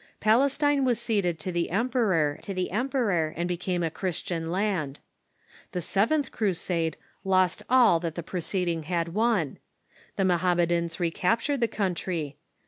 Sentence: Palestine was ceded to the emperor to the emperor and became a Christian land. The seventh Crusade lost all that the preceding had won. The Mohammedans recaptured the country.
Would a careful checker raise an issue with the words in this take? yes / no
no